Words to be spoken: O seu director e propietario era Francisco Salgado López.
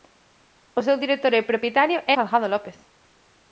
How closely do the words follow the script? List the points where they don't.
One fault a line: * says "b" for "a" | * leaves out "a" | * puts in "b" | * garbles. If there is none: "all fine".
* leaves out "era Francisco"